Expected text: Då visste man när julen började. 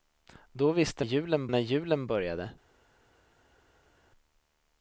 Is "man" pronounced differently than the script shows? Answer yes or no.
yes